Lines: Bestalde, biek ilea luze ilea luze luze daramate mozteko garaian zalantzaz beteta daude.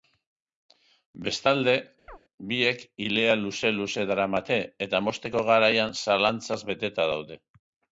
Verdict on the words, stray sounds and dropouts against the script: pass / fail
fail